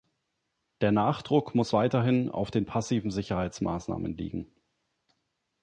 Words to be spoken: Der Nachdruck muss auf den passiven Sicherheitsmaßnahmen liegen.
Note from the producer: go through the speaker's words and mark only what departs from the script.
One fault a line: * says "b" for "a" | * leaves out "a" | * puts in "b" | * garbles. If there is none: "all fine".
* puts in "weiterhin"